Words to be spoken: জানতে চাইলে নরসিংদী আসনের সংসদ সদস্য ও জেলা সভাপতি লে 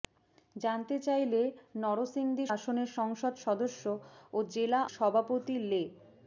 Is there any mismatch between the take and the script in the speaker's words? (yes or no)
no